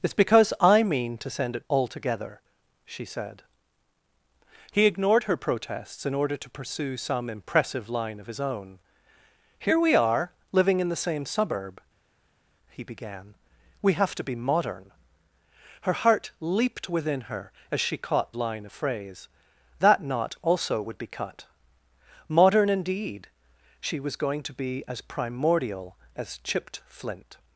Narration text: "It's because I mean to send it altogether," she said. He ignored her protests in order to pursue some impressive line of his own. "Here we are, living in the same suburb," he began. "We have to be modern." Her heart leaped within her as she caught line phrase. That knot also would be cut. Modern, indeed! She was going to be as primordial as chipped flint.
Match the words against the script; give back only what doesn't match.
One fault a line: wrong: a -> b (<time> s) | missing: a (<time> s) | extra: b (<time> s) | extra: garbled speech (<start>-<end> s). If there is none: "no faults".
no faults